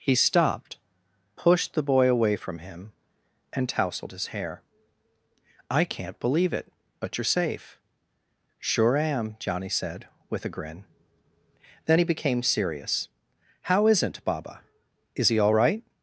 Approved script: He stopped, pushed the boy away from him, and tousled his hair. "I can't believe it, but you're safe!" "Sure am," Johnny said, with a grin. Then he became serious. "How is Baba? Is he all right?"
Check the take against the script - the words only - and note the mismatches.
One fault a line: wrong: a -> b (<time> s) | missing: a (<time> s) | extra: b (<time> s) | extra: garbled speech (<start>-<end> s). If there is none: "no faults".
wrong: is -> isn't (13.9 s)